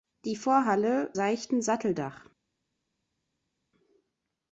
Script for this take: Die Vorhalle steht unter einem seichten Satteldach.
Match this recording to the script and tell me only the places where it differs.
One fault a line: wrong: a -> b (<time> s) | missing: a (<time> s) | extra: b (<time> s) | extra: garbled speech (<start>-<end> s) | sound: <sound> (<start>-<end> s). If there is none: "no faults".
missing: steht unter einem (1.1 s)